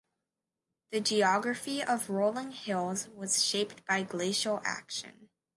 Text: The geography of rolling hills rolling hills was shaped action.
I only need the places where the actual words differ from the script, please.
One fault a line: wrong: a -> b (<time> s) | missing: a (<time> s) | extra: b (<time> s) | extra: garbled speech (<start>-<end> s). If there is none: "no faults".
wrong: rolling hills was shaped -> was shaped by glacial (3.1 s)